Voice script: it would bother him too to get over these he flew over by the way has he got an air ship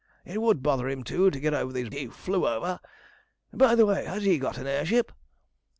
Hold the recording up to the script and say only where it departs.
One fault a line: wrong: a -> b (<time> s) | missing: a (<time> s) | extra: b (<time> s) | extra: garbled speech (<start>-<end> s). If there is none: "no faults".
no faults